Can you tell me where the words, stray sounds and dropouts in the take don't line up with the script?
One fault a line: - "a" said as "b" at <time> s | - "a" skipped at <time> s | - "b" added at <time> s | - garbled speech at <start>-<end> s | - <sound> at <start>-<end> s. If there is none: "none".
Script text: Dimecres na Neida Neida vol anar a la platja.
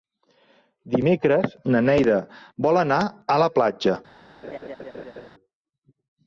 - "Neida" skipped at 2.2 s
- laugh at 4.4-5.3 s